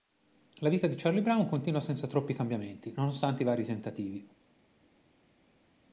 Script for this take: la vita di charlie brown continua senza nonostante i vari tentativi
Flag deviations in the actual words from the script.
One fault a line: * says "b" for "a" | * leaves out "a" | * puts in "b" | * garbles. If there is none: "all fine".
* puts in "troppi cambiamenti"